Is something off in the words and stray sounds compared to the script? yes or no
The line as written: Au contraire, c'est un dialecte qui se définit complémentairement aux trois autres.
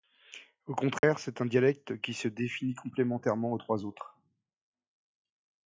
yes